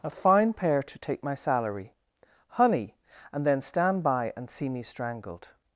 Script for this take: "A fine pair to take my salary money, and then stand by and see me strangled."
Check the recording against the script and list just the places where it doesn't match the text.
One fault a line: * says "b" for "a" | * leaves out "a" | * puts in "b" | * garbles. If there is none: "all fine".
* says "honey" for "money"